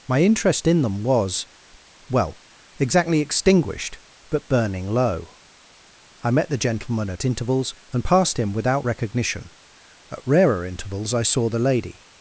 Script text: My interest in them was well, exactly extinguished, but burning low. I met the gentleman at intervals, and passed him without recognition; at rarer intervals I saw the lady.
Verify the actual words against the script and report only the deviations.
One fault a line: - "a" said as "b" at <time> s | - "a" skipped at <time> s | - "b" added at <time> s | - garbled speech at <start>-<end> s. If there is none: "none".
none